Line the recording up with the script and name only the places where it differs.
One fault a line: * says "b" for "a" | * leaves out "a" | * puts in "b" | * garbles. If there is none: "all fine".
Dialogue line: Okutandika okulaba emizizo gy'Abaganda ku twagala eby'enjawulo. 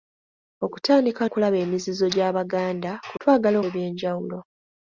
all fine